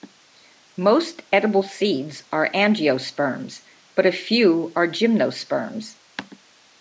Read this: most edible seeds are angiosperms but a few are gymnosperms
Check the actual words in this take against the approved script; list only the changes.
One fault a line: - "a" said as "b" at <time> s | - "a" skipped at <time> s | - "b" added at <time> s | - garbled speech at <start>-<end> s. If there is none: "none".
none